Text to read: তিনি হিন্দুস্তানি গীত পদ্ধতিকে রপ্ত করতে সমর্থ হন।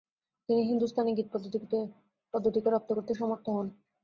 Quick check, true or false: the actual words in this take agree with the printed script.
true